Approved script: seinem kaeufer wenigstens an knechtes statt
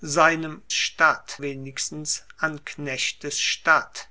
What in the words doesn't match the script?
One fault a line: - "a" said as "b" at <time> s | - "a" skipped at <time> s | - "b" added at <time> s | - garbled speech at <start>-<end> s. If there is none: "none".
- "kaeufer" said as "statt" at 0.7 s